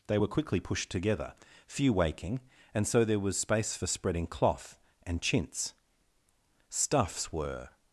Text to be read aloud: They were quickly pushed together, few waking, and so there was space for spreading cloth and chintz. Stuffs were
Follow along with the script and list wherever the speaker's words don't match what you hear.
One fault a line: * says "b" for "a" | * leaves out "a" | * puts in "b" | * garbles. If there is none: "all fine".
all fine